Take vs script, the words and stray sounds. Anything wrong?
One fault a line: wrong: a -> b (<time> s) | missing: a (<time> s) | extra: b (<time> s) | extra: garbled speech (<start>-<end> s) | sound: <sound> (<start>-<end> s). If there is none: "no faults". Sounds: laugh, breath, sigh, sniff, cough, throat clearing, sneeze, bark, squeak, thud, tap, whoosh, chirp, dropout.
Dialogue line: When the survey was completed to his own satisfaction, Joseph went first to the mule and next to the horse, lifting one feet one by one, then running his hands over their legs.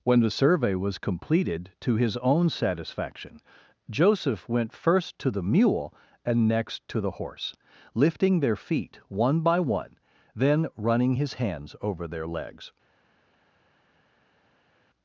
wrong: one -> their (8.4 s)